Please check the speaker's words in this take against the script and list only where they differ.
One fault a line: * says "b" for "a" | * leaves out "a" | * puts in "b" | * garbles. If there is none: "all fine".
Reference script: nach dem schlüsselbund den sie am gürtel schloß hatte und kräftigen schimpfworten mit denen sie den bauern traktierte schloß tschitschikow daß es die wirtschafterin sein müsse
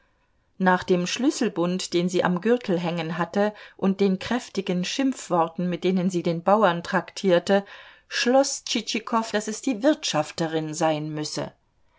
* says "hängen" for "schloß"
* puts in "den"